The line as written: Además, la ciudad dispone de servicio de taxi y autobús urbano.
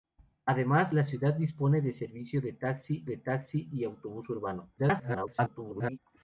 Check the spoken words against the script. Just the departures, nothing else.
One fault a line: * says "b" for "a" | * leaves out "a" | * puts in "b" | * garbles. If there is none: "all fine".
* puts in "de taxi"
* garbles